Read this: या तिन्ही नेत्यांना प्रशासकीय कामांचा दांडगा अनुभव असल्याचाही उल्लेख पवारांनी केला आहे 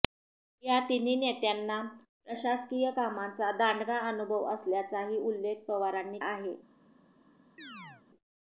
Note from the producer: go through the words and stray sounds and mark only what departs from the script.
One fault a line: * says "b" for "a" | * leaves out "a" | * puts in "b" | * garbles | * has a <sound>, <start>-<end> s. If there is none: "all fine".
* leaves out "केला"
* has a chirp, 7.6-8.0 s